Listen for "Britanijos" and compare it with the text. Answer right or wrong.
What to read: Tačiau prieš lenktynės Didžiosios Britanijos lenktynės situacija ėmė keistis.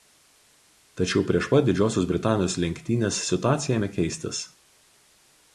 right